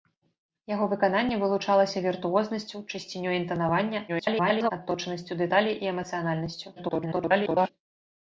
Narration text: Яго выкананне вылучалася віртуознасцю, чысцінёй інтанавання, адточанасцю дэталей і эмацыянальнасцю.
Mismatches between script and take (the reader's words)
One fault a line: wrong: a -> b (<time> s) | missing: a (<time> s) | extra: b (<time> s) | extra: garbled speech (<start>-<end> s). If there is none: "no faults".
extra: garbled speech (4.1-4.7 s)
extra: garbled speech (6.8-7.7 s)